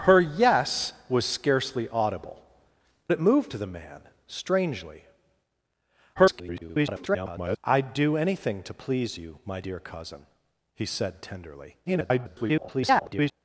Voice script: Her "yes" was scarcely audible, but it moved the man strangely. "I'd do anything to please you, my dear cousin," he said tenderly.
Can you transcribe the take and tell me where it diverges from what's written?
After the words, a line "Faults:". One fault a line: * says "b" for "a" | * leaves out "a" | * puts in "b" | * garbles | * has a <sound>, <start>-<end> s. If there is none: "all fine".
Her "yes" was scarcely audible, it moved the man strangely. [garbled] "I'd do anything to please you, my dear cousin," he said tenderly. [garbled]
Faults:
* leaves out "but"
* garbles
* garbles